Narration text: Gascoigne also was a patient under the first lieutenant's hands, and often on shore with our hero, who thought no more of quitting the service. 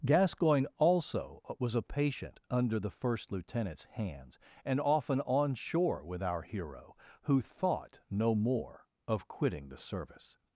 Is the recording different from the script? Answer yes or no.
no